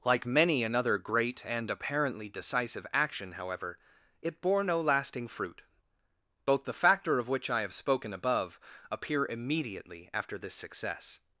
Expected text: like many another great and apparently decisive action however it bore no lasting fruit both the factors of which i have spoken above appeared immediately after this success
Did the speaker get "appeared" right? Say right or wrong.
wrong